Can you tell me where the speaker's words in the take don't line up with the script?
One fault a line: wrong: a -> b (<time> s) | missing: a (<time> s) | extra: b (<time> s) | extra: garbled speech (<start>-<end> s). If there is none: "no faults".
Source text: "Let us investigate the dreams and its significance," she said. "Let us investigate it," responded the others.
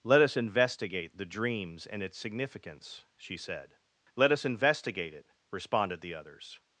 no faults